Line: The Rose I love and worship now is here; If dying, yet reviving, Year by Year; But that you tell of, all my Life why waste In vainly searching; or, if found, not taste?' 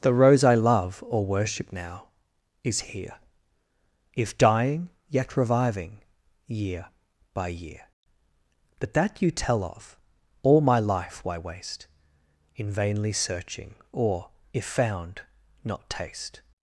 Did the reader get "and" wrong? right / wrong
wrong